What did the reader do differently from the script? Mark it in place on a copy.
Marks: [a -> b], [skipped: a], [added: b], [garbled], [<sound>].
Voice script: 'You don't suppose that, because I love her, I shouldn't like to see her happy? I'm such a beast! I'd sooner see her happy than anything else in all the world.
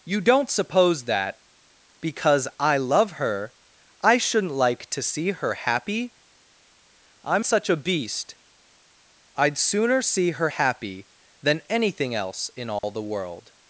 'You don't suppose that, because I love her, I shouldn't like to see her happy? I'm such a beast! I'd sooner see her happy than anything else in all [dropout] the world.